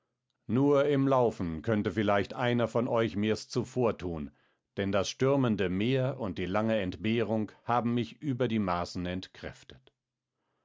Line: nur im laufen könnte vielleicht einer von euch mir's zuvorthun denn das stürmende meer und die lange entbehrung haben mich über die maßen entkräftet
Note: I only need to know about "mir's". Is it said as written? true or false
true